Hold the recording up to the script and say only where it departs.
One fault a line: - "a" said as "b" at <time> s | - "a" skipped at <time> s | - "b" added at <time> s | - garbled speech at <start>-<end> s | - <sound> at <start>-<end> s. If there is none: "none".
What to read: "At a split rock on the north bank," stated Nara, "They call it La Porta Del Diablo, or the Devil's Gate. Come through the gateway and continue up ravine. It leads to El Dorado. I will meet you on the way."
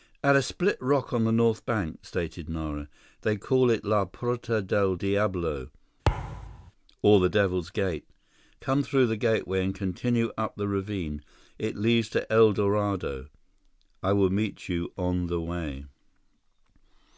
- thud at 6.1-6.7 s
- "the" added at 10.5 s